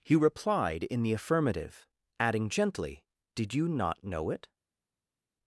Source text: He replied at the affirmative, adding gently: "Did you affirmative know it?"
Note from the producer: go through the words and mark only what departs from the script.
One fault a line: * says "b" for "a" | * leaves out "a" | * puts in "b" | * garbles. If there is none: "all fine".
* says "in" for "at"
* says "not" for "affirmative"